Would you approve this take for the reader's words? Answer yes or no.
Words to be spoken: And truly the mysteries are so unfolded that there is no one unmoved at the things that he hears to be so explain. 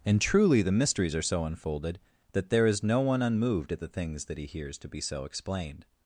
no